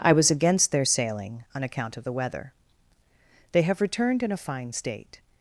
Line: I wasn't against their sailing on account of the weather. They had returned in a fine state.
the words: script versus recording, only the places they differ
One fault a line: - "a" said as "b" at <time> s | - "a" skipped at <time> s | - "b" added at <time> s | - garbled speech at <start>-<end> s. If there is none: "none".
- "wasn't" said as "was" at 0.1 s
- "had" said as "have" at 3.6 s